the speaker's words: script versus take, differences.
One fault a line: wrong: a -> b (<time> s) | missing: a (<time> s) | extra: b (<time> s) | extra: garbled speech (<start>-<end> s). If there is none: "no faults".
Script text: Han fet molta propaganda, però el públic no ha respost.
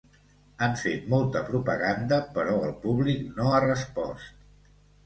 no faults